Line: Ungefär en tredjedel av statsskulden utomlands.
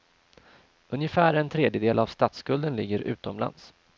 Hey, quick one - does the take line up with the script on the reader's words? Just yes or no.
no